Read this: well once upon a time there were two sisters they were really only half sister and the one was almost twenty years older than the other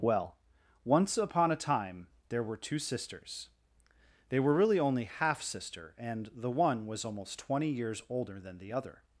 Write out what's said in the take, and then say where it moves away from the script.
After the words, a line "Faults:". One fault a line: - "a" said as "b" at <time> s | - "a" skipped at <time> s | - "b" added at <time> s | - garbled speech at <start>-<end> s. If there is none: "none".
well once upon a time there were two sisters they were really only half sister and the one was almost twenty years older than the other
Faults:
none